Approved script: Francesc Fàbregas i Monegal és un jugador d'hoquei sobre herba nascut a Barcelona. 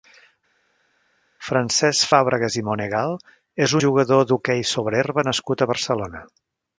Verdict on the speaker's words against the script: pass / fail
fail